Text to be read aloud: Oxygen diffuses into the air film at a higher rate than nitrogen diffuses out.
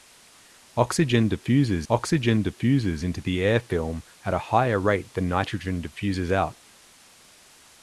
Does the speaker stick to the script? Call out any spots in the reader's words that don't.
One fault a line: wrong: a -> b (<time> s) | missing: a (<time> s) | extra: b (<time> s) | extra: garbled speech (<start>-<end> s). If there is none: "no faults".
extra: oxygen diffuses (1.9 s)